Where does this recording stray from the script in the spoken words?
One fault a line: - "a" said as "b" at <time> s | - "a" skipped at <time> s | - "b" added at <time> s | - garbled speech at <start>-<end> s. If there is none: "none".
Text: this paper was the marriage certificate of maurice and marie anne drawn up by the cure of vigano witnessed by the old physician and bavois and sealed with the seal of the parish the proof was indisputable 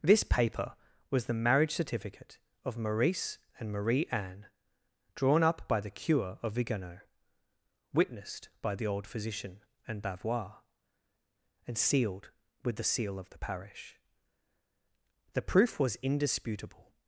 none